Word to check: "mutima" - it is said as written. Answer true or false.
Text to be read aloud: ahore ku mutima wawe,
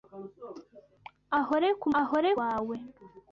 false